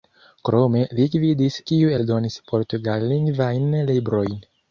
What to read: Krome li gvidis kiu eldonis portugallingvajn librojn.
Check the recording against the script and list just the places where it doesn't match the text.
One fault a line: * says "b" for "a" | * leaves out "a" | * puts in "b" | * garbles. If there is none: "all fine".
all fine